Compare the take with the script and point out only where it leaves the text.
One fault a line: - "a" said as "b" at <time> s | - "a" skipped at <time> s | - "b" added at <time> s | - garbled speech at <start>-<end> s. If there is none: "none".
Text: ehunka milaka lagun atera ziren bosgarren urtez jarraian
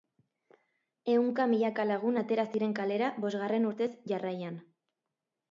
- "kalera" added at 2.8 s